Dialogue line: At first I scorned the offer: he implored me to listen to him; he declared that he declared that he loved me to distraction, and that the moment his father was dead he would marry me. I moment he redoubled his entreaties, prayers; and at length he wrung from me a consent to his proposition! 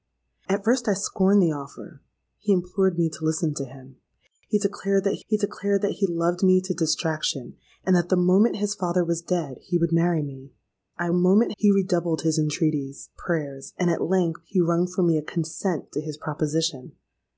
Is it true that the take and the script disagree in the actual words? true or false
false